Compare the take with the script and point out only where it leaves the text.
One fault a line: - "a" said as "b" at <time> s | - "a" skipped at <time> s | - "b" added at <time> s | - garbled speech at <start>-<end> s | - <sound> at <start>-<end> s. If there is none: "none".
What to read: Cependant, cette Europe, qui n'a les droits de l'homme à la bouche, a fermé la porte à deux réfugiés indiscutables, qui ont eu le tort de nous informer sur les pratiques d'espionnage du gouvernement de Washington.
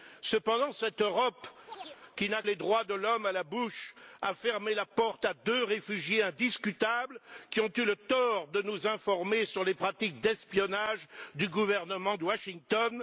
- chirp at 1.7-2.0 s